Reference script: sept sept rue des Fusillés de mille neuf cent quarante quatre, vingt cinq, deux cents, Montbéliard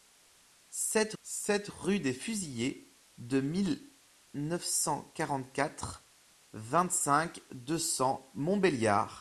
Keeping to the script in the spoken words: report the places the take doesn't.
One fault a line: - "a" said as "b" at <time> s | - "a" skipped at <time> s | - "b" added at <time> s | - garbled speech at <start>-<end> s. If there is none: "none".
none